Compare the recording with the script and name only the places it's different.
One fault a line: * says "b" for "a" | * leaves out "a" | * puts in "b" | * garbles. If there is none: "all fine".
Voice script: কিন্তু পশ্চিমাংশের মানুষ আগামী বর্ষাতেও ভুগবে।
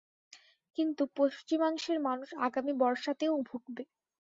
all fine